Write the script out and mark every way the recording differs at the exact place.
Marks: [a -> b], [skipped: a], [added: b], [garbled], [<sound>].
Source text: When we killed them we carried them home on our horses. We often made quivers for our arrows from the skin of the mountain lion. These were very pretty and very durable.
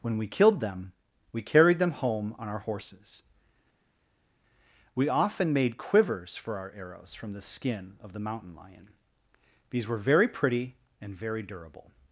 When we killed them we carried them home on our horses. We often made quivers for our arrows from the skin of the mountain lion. These were very pretty and very durable.